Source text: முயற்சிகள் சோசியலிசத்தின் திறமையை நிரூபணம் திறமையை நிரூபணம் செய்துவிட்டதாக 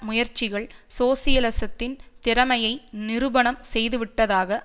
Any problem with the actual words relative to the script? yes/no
yes